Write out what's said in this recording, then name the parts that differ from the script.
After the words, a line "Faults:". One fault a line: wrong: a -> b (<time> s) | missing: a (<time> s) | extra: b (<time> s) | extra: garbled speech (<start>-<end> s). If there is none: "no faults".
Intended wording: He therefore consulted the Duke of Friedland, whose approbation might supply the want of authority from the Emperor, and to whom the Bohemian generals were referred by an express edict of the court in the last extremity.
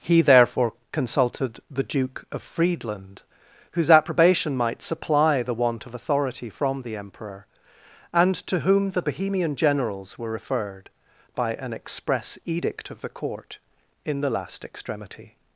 He therefore consulted the Duke of Friedland, whose approbation might supply the want of authority from the Emperor, and to whom the Bohemian generals were referred by an express edict of the court in the last extremity.
Faults:
no faults